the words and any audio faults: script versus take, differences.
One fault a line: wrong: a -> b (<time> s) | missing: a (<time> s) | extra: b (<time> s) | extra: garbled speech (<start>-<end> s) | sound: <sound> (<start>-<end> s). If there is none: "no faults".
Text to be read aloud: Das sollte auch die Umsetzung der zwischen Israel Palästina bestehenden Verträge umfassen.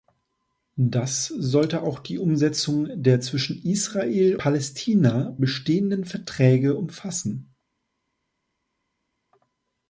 no faults